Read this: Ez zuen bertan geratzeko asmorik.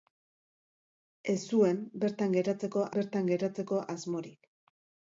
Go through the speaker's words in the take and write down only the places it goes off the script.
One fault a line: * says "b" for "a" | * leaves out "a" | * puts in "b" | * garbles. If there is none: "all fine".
* puts in "bertan geratzeko"